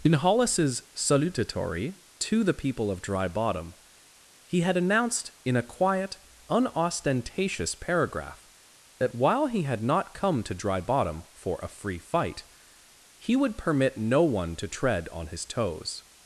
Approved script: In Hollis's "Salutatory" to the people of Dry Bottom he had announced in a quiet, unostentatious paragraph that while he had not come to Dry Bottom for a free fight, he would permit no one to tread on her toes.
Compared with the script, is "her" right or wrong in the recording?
wrong